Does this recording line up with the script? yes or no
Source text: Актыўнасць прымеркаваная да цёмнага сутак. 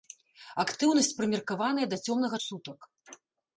yes